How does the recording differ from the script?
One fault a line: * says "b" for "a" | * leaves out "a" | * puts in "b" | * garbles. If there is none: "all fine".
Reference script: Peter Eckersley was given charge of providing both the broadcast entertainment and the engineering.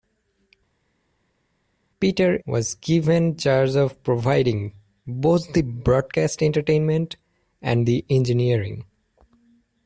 * leaves out "Eckersley"